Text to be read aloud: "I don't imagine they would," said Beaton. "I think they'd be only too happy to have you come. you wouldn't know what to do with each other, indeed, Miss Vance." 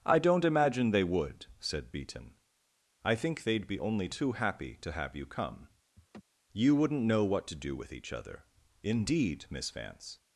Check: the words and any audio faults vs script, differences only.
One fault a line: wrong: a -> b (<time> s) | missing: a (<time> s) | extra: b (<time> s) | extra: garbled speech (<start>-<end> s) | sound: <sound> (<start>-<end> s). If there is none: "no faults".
sound: laugh (6.0-6.2 s)